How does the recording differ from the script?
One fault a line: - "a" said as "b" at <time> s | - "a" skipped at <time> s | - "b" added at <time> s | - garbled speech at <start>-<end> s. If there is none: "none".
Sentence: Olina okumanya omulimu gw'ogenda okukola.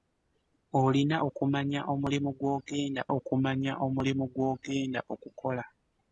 - "okumanya omulimu gw'ogenda" added at 3.2 s